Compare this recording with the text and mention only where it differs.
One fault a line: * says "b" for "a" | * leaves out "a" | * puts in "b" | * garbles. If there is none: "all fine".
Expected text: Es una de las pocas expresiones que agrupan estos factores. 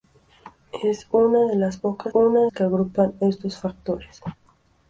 * says "una" for "expresiones"